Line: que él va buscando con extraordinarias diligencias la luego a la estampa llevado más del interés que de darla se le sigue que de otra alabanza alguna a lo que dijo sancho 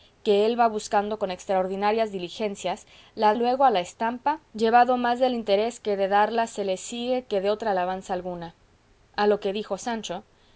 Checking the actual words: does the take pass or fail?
pass